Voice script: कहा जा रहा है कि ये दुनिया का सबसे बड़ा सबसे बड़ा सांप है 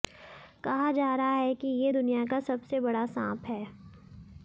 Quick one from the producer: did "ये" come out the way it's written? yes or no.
yes